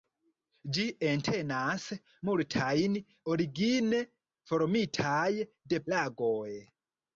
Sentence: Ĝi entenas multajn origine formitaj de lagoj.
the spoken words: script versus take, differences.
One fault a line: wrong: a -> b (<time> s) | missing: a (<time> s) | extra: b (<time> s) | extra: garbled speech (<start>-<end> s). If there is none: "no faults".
no faults